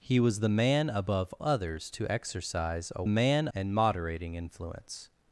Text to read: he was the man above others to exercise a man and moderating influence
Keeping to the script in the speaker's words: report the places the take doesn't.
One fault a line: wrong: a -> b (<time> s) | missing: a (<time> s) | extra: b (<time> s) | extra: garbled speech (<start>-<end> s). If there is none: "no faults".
no faults